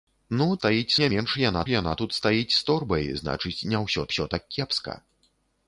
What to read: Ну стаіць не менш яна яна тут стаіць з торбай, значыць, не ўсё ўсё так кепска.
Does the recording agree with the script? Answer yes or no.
yes